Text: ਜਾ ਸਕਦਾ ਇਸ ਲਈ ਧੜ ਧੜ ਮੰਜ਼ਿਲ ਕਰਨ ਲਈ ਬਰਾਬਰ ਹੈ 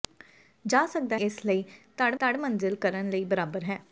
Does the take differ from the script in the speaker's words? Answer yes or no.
no